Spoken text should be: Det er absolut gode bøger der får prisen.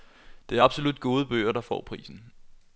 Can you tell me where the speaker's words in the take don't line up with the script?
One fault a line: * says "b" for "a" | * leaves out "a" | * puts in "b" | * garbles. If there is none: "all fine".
all fine